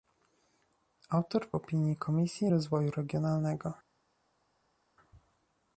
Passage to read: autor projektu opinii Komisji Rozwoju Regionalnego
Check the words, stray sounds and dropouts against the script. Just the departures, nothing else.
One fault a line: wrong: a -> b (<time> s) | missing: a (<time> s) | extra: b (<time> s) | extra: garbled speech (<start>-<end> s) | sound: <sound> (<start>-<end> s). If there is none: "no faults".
missing: projektu (1.5 s)